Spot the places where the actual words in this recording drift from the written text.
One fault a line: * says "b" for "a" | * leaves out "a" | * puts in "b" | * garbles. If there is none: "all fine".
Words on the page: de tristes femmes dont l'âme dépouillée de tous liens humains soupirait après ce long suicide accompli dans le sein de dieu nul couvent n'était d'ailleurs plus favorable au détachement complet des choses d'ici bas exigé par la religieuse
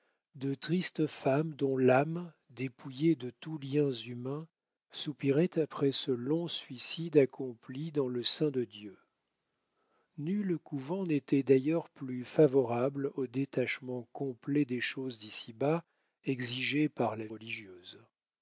all fine